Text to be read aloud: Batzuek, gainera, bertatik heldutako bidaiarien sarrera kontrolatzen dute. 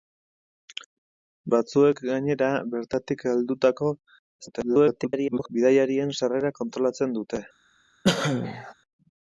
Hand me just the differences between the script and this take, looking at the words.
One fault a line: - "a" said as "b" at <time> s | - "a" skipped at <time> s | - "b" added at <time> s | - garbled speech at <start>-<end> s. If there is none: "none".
- garbled speech at 4.4-5.5 s